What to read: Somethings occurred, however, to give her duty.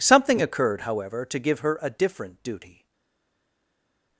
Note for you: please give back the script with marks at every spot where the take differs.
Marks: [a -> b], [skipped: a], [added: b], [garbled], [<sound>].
[Somethings -> Something] occurred, however, to give her [added: a different] duty.